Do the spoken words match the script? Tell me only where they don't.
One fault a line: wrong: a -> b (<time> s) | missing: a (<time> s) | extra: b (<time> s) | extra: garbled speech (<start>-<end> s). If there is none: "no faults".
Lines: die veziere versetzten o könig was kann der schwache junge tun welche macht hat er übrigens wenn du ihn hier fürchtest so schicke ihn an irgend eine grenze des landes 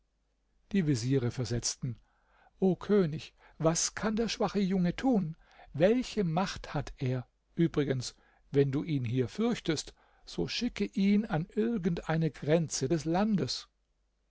no faults